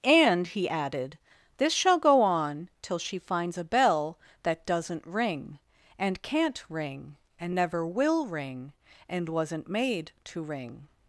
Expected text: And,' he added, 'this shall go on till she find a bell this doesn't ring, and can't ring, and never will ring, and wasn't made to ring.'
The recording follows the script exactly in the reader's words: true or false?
false